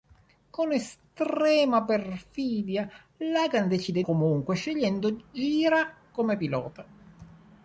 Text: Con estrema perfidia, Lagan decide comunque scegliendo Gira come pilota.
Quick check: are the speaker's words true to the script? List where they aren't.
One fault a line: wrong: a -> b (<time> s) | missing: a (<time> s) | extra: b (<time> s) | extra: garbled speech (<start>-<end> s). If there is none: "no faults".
no faults